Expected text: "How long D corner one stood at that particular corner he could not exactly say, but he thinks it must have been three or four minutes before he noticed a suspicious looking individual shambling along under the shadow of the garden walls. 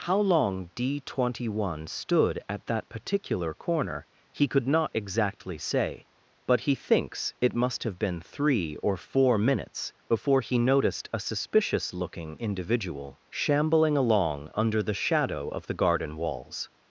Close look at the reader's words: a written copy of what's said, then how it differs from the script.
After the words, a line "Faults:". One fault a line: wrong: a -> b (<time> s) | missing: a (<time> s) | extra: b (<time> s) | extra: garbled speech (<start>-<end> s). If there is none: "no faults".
"How long D twenty one stood at that particular corner he could not exactly say, but he thinks it must have been three or four minutes before he noticed a suspicious looking individual shambling along under the shadow of the garden walls.
Faults:
wrong: corner -> twenty (1.0 s)